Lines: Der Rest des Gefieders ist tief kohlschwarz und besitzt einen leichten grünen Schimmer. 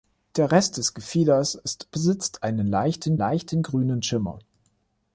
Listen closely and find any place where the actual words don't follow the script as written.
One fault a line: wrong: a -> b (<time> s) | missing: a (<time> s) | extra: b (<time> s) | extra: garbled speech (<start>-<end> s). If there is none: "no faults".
missing: tief kohlschwarz und (1.9 s)
extra: leichten (3.1 s)